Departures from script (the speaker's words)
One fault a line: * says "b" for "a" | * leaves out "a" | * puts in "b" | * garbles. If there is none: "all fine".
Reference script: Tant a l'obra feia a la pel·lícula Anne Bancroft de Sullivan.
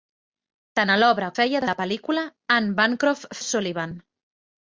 all fine